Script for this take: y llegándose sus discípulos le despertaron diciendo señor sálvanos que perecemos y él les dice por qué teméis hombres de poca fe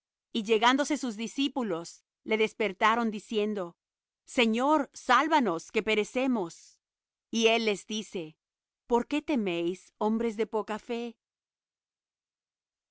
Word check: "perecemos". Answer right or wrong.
right